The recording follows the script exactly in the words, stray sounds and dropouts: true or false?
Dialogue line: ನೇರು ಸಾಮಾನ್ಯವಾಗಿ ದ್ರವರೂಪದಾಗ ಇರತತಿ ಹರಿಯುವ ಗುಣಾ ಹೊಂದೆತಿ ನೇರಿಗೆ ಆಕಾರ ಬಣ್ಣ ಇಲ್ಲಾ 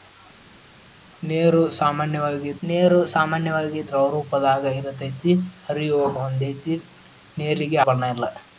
false